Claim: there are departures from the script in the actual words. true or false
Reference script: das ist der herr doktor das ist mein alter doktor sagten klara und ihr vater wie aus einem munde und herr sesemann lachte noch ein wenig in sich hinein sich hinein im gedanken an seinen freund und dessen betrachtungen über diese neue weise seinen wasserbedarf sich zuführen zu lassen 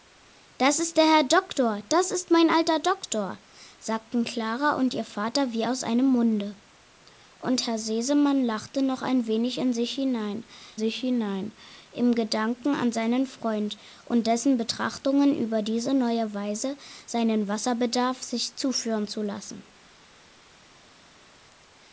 false